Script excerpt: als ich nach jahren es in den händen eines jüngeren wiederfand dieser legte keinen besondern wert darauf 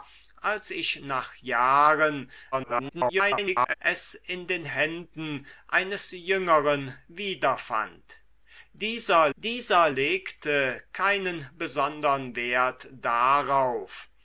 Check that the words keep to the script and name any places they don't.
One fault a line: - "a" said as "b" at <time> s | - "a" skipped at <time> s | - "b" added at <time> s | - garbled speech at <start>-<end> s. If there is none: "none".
- garbled speech at 2.5-3.7 s
- "dieser" added at 9.4 s